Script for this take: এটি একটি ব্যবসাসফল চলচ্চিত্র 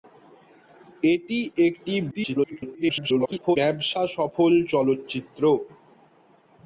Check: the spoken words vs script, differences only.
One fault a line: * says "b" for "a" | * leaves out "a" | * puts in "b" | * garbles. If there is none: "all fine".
* garbles